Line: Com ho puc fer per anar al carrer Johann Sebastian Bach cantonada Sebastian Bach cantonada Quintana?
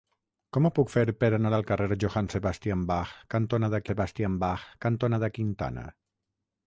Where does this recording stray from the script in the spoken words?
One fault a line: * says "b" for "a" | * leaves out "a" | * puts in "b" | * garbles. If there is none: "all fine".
all fine